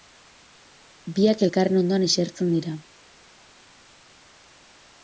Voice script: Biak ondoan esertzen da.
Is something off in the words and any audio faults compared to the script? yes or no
yes